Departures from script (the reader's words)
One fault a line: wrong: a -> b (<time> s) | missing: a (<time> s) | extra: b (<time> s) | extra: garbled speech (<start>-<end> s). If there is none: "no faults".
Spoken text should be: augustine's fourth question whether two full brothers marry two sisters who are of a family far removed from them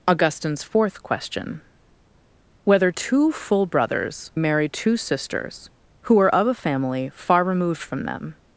no faults